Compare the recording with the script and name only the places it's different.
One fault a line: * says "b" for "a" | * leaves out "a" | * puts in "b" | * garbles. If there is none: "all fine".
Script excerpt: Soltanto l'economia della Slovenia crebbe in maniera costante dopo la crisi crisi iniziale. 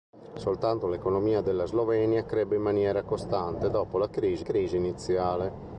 all fine